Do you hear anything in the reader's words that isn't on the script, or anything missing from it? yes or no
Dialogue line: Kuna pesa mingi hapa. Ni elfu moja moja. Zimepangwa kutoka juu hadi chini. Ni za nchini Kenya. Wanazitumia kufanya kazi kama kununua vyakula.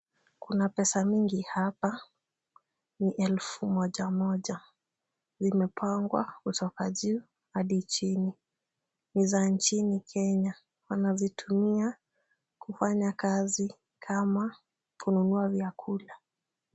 no